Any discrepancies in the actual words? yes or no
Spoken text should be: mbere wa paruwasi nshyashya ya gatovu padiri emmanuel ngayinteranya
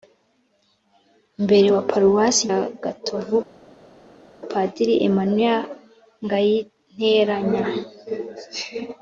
yes